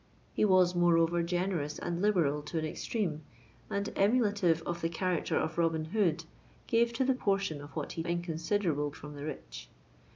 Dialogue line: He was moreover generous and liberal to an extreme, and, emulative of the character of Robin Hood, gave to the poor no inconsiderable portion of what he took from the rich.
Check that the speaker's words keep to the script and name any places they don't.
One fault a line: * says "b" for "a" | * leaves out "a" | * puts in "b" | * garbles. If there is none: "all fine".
* leaves out "poor no inconsiderable"
* says "inconsiderable" for "took"